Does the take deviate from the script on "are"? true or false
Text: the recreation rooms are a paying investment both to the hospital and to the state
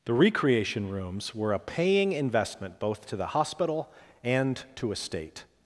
true